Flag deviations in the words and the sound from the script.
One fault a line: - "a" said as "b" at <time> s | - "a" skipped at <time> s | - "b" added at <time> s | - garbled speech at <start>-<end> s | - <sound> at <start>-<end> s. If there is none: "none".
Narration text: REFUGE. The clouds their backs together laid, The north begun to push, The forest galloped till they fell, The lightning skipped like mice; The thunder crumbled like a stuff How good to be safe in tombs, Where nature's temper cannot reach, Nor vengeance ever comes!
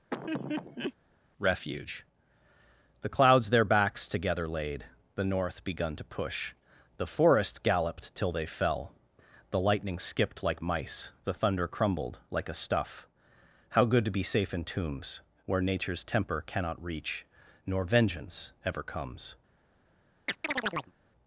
- laugh at 0.1-0.9 s
- chirp at 20.3-20.9 s